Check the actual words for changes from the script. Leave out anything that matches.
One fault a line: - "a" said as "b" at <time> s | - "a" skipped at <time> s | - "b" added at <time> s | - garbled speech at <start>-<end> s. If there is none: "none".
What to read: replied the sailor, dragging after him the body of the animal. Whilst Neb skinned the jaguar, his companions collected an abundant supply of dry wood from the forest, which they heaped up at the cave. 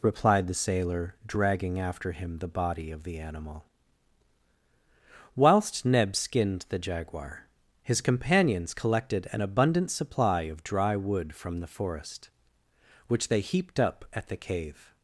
none